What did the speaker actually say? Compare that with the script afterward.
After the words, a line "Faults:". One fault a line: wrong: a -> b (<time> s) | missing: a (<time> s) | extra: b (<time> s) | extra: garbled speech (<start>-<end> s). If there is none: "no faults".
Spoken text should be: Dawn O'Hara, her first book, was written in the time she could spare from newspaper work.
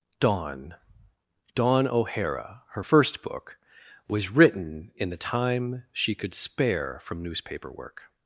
Dawn dawn O'Hara, her first book, was written in the time she could spare from newspaper work.
Faults:
extra: dawn (1.5 s)